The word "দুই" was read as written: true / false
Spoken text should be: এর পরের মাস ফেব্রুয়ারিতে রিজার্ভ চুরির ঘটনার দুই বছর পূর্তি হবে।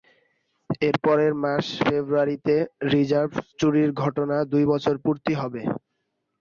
true